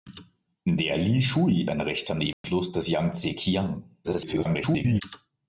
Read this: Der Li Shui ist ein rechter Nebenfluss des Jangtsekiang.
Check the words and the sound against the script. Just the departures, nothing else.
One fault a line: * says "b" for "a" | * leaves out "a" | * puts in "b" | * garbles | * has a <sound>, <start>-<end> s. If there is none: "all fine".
* leaves out "ist"
* has a dropout, 2.3-2.4 s
* garbles